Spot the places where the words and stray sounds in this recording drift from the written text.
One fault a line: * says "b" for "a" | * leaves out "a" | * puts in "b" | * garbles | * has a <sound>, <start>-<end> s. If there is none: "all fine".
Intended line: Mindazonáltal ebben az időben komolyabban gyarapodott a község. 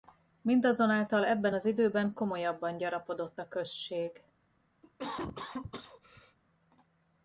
* has a cough, 4.8-6.4 s